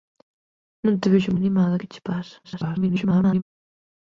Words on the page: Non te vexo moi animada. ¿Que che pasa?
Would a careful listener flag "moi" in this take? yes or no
yes